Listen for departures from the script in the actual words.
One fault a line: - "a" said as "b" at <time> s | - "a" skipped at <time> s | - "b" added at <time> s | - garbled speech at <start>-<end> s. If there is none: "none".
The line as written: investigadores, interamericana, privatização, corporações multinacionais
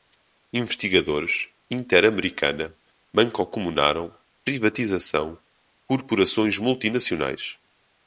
- "mancomunaram" added at 3.1 s